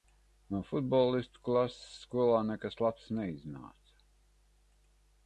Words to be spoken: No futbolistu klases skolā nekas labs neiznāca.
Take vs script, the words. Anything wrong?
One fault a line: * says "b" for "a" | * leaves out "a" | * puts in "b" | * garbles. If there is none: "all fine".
all fine